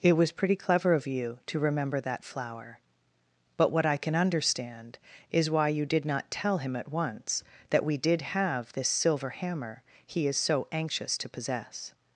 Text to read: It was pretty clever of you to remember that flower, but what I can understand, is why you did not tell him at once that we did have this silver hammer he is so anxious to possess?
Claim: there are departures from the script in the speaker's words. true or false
false